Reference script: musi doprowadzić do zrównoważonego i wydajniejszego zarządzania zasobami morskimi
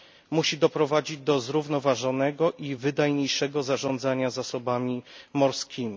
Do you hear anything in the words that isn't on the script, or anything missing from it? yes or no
no